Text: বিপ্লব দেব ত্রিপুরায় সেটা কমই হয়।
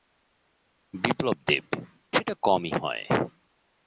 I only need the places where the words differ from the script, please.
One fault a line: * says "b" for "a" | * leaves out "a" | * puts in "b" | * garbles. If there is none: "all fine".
* leaves out "ত্রিপুরায়"